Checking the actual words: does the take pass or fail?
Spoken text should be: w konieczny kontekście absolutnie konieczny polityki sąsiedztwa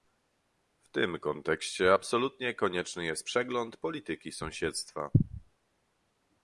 fail